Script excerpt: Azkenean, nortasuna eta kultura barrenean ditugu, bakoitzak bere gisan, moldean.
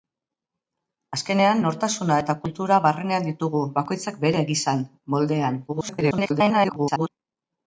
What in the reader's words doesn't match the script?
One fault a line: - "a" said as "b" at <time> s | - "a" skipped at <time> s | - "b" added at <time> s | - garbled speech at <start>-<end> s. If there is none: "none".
- garbled speech at 5.7-7.1 s